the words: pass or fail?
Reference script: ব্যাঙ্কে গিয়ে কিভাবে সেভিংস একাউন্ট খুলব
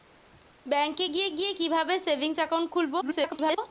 fail